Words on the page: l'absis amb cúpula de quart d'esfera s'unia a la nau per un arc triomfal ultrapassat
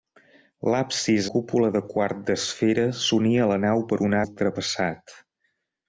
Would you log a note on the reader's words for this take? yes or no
yes